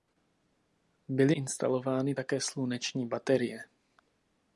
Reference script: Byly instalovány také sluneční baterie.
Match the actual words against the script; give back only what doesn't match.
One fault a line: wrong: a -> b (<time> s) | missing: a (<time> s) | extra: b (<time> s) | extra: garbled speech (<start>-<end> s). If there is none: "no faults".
no faults